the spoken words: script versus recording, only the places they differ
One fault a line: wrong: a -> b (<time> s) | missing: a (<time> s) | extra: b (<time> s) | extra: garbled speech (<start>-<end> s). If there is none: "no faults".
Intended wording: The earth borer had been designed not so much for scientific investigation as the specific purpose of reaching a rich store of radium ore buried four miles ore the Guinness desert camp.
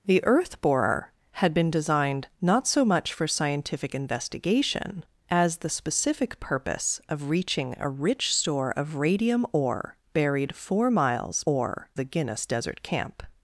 no faults